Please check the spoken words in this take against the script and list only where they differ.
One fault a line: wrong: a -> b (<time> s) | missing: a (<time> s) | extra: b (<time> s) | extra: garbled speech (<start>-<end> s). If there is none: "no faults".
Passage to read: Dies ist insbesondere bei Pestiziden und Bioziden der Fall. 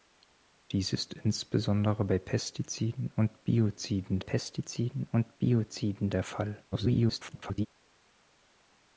extra: Pestiziden und Bioziden (4.2 s)
extra: garbled speech (6.7-7.7 s)